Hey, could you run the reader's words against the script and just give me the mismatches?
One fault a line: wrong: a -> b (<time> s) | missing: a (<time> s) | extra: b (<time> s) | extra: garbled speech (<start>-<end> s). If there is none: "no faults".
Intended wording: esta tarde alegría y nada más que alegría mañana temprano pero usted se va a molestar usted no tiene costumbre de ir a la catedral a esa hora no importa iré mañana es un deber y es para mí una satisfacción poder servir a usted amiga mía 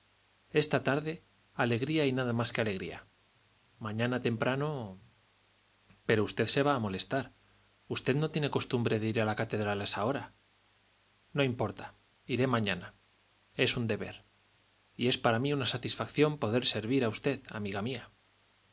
no faults